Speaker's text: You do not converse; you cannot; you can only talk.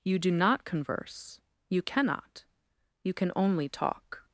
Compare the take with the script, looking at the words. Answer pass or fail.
pass